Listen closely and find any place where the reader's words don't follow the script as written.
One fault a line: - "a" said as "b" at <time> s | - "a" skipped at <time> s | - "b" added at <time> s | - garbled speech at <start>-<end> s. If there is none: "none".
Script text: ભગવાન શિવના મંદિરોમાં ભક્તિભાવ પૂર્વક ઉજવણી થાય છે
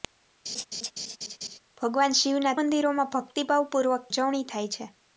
none